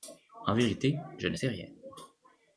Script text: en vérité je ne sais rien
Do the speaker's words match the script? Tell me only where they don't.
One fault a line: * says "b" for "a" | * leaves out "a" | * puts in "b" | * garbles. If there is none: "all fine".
all fine